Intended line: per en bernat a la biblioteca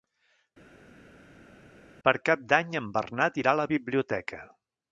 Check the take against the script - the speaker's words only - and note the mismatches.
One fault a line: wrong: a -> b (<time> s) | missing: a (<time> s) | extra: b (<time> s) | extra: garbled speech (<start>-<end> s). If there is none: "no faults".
extra: cap d'any (2.3 s)
extra: irà (3.4 s)